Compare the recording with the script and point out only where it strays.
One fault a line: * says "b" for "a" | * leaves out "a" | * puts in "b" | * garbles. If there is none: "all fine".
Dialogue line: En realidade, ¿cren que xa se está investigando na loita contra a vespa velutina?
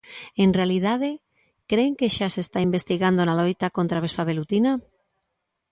all fine